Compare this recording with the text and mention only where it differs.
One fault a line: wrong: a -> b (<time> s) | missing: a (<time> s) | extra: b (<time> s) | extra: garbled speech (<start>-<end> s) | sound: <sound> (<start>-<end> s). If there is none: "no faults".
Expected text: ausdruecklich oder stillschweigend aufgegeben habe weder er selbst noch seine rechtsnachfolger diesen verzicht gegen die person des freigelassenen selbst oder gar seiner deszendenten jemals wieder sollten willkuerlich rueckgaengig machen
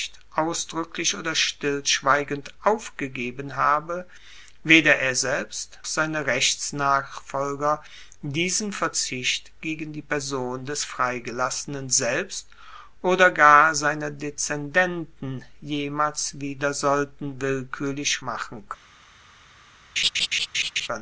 missing: noch (5.8 s)
missing: rueckgaengig (18.2 s)
sound: laugh (20.0-20.9 s)